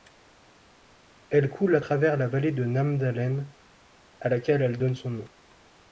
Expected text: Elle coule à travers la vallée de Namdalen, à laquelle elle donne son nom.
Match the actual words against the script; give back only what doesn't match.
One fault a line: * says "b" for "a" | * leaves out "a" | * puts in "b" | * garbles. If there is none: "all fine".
all fine